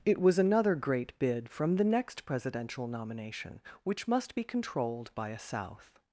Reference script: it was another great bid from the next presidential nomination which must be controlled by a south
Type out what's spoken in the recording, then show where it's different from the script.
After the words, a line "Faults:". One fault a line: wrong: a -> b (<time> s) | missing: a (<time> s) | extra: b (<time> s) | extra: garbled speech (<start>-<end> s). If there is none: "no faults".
it was another great bid from the next presidential nomination which must be controlled by a south
Faults:
no faults